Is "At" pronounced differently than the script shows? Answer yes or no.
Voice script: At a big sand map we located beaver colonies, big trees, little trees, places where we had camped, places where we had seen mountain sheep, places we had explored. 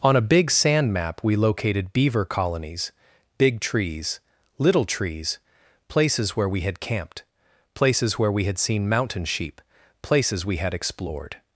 yes